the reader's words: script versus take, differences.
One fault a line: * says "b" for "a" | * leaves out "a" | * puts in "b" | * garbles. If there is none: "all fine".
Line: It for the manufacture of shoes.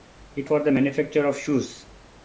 all fine